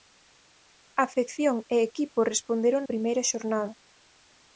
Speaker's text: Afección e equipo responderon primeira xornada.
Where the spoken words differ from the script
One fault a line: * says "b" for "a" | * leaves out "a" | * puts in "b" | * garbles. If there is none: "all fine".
all fine